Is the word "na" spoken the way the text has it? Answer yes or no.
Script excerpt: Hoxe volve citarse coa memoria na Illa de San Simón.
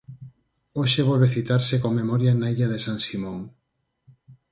yes